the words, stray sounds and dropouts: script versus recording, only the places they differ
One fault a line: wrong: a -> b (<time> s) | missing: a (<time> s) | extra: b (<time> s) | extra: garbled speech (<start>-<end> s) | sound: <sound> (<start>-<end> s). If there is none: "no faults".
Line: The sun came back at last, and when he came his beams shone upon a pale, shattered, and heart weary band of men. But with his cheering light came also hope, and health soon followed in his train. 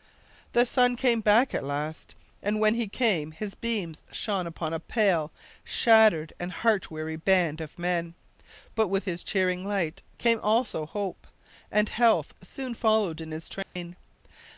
sound: dropout (13.6-13.8 s)